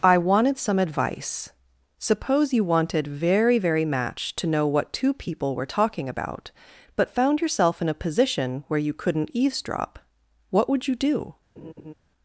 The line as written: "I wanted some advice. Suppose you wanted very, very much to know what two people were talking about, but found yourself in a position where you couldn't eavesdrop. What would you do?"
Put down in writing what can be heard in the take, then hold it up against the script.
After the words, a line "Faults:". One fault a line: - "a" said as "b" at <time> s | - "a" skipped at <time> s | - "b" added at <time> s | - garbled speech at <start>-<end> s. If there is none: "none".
"I wanted some advice. Suppose you wanted very, very match to know what two people were talking about, but found yourself in a position where you couldn't eavesdrop. What would you do?"
Faults:
- "much" said as "match" at 3.9 s